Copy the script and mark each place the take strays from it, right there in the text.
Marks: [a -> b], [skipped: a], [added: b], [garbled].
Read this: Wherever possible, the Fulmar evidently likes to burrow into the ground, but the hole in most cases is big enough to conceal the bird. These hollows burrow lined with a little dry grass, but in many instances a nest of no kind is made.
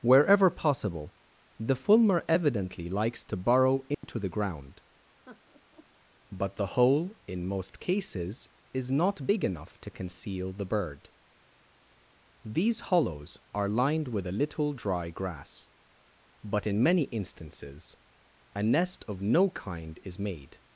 Wherever possible, the Fulmar evidently likes to burrow into the ground, but the hole in most cases is [added: not] big enough to conceal the bird. These hollows [burrow -> are] lined with a little dry grass, but in many instances a nest of no kind is made.